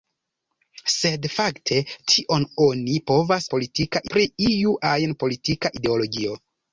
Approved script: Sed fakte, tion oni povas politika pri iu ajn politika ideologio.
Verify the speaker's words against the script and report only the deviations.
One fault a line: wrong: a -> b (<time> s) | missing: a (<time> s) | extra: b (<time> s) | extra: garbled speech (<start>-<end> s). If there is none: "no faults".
no faults